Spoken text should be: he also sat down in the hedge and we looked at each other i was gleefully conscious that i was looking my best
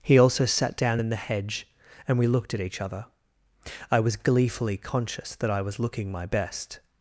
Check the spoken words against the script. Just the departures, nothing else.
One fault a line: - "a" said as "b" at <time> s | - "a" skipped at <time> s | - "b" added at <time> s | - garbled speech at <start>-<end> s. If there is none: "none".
none